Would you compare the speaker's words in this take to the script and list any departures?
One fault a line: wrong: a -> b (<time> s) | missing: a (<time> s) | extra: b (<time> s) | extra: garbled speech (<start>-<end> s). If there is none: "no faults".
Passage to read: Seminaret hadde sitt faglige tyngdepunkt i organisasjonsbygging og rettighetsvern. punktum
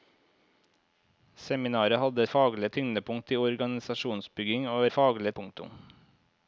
missing: sitt (2.2 s)
wrong: rettighetsvern -> faglige (4.9 s)